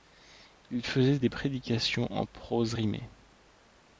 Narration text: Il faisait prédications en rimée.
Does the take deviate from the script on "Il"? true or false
false